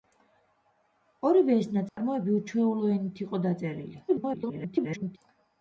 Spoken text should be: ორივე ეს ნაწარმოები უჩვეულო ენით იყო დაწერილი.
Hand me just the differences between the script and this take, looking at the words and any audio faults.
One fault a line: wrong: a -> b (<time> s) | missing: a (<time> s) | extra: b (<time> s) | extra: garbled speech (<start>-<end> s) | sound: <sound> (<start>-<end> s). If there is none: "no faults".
sound: dropout (1.9-2.0 s)
extra: garbled speech (4.1-5.2 s)